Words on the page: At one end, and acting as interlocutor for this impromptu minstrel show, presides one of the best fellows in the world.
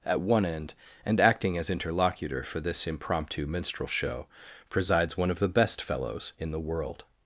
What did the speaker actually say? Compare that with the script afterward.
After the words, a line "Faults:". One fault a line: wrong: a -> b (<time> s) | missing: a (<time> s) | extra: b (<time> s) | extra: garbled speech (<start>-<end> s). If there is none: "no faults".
At one end, and acting as interlocutor for this impromptu minstrel show, presides one of the best fellows in the world.
Faults:
no faults